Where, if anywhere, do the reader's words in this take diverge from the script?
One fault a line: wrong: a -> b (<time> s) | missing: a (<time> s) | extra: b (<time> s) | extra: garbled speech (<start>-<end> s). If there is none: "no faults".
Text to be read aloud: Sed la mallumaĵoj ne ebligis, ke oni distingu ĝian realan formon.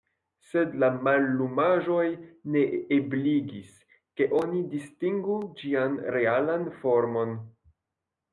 no faults